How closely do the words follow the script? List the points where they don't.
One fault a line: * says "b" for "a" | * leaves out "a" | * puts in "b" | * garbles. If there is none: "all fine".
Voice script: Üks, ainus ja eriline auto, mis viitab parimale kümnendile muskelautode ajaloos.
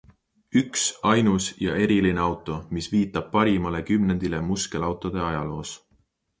all fine